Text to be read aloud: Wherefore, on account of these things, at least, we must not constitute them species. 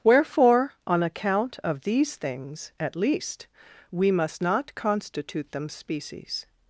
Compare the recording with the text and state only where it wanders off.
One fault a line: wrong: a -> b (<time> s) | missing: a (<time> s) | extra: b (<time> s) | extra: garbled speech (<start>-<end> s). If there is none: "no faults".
no faults